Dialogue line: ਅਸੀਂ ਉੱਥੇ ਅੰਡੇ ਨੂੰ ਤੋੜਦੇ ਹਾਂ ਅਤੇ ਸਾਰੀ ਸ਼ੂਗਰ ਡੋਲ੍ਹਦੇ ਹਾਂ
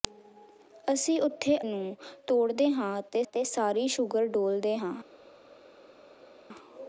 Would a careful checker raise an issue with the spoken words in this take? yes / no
yes